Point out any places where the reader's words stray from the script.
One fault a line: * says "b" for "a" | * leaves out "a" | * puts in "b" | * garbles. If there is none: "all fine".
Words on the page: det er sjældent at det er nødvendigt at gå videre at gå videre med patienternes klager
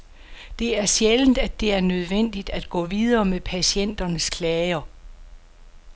* leaves out "at gå videre"